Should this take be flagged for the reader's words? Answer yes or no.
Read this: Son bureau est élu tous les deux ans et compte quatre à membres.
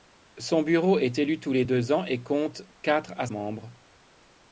no